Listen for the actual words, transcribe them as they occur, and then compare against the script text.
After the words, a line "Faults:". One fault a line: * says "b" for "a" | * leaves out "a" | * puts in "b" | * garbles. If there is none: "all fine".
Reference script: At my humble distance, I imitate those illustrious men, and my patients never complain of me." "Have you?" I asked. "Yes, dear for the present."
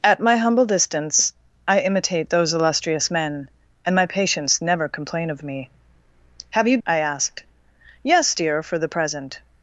At my humble distance, I imitate those illustrious men, and my patients never complain of me." "Have you?" I asked. "Yes, dear for the present."
Faults:
all fine